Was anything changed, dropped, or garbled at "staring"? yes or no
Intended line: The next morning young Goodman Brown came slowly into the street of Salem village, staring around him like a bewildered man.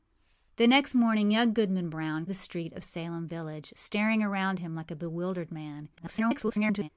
no